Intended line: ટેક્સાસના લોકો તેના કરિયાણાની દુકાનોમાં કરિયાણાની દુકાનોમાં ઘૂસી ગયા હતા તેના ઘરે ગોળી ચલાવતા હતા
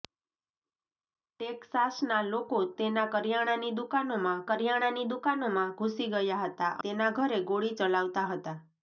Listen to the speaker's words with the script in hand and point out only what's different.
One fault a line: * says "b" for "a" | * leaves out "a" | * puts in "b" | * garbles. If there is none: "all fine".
all fine